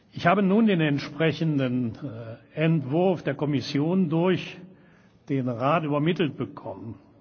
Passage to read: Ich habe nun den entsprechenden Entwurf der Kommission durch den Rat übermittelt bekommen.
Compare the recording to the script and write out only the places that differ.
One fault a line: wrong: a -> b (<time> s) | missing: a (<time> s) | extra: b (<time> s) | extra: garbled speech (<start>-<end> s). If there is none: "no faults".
no faults